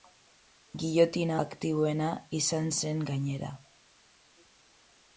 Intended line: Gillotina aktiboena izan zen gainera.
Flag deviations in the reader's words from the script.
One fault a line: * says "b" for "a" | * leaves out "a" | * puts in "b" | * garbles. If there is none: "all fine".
all fine